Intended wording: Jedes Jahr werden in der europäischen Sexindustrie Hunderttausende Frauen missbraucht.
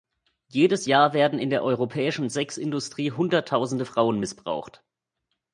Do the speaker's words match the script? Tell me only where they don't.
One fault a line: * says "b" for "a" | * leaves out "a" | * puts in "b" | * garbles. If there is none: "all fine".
all fine